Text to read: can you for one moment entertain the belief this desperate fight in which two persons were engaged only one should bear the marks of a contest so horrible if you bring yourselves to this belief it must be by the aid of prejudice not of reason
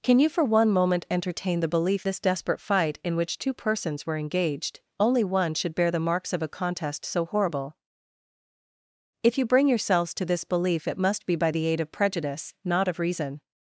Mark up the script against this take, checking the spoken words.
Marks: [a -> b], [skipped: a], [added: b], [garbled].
can you for one moment entertain the belief this desperate fight in which two persons were engaged only one should bear the marks of a contest so horrible if you bring yourselves to this belief it must be by the aid of prejudice not of reason